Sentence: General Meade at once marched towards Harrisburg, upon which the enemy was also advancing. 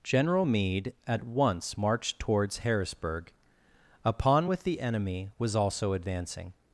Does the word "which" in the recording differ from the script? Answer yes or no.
yes